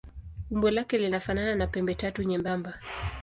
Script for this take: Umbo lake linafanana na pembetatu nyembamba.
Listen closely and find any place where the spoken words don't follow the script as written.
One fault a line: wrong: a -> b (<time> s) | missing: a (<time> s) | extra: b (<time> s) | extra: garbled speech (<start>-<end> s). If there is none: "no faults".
no faults